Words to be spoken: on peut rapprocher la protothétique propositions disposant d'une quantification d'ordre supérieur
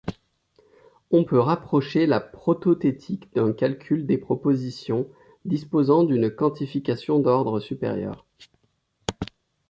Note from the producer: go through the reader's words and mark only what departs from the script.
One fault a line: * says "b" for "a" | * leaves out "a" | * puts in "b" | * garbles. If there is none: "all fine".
* puts in "d'un calcul des"